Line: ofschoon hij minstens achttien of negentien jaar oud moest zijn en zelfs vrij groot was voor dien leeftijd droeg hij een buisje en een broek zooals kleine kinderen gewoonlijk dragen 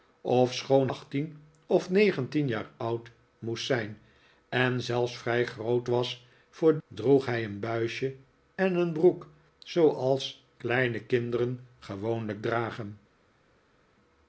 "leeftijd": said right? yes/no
no